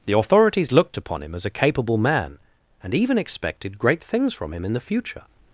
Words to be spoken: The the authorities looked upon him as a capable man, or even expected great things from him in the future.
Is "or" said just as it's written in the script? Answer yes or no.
no